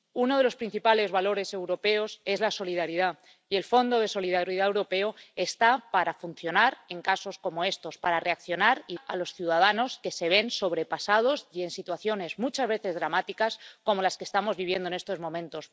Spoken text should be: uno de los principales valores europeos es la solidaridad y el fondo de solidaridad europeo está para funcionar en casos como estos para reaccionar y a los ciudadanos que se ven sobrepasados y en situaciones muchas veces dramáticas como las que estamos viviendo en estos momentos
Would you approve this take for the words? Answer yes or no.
yes